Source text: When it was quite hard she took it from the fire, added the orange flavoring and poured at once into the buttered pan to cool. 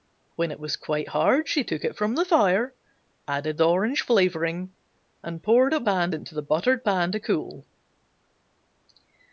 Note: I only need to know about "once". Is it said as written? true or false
false